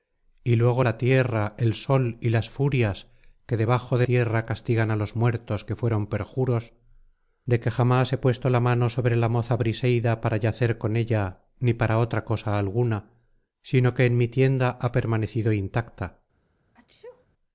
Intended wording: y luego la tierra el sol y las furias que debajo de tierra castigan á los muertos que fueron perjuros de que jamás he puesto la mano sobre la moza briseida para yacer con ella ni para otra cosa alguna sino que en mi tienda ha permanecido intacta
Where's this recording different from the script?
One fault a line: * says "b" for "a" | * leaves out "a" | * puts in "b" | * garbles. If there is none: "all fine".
all fine